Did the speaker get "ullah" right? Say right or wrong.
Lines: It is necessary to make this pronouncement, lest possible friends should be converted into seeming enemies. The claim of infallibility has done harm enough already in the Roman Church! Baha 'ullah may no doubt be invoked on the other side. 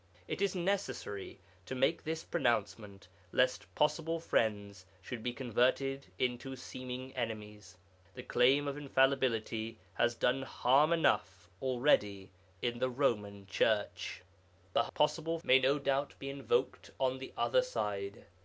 wrong